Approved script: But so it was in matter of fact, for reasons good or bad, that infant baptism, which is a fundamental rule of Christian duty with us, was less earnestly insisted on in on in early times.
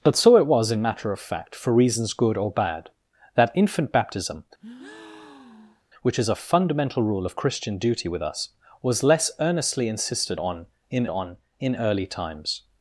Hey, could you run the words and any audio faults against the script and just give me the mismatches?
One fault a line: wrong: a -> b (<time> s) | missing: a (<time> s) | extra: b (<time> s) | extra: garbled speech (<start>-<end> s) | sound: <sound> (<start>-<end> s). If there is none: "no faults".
sound: breath (4.6-5.8 s)